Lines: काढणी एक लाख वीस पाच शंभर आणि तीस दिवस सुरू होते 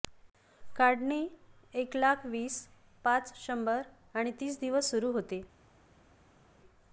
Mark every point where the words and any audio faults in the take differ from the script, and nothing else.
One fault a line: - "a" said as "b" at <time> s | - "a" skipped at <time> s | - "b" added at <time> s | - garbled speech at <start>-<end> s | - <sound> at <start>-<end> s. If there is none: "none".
none